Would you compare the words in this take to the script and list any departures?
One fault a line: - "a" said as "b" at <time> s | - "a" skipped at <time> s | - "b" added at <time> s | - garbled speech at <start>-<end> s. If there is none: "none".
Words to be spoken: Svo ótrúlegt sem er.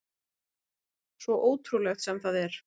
- "það" added at 2.3 s